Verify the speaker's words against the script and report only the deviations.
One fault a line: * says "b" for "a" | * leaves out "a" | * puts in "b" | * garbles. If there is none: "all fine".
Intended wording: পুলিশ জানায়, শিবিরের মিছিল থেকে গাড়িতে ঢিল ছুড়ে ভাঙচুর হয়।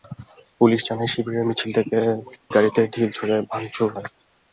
all fine